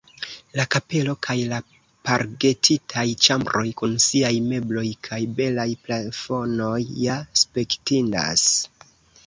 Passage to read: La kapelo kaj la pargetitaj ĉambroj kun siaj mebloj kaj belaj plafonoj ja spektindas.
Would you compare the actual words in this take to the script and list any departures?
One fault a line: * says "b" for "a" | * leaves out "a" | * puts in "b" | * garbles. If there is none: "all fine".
all fine